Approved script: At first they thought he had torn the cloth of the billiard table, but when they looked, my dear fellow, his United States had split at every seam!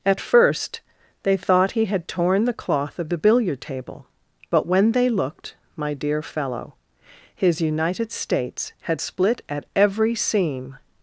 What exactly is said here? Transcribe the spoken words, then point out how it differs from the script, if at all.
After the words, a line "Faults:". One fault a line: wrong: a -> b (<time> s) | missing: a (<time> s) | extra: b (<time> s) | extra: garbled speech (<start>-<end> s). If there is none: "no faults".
At first they thought he had torn the cloth of the billiard table, but when they looked, my dear fellow, his United States had split at every seam!
Faults:
no faults